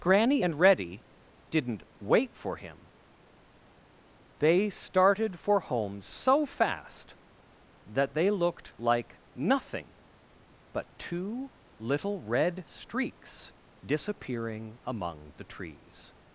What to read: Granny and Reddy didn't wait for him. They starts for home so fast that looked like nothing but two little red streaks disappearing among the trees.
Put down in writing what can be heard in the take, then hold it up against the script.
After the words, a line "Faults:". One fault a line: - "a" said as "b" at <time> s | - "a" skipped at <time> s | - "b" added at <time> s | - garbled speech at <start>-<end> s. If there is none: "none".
Granny and Reddy didn't wait for him. They started for home so fast that they looked like nothing but two little red streaks disappearing among the trees.
Faults:
- "starts" said as "started" at 4.7 s
- "they" added at 8.1 s